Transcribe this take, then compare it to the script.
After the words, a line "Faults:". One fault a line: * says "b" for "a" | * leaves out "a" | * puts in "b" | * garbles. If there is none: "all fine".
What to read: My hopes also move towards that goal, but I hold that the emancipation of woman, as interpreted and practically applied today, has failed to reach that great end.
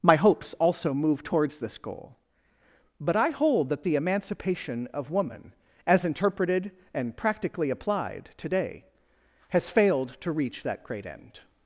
My hopes also move towards this goal, but I hold that the emancipation of woman, as interpreted and practically applied today, has failed to reach that great end.
Faults:
* says "this" for "that"